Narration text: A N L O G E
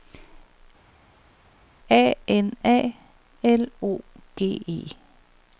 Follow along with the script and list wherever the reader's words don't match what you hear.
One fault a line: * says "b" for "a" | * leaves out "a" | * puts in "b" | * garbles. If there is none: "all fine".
* puts in "A"